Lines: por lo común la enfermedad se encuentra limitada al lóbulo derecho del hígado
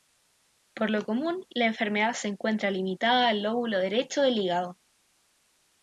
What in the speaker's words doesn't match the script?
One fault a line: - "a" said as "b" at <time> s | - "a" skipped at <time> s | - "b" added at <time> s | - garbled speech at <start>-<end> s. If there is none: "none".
none